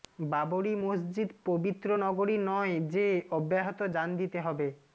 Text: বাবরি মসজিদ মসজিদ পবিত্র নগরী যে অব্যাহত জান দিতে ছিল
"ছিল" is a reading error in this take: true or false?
true